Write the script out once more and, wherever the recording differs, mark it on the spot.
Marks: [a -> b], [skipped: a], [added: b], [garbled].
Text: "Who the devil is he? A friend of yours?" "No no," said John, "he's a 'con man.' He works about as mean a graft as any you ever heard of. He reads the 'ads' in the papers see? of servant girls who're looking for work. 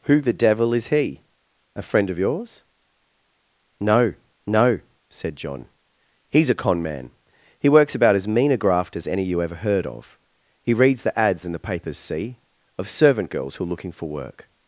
"Who the devil is he? A friend of yours?" "No no," said John, "he's a 'con man.' He works about as mean a graft as any you ever heard of. He reads the 'ads' in the papers see? of servant girls who're looking for work.